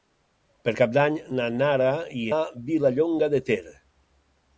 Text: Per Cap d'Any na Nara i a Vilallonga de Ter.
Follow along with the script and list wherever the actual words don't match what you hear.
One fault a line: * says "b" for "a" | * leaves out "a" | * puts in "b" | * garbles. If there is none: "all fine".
all fine